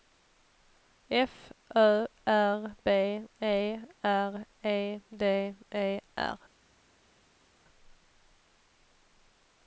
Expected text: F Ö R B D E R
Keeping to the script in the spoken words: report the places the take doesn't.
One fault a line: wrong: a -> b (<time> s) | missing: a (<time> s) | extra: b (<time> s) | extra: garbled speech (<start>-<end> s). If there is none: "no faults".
extra: E R E (3.4 s)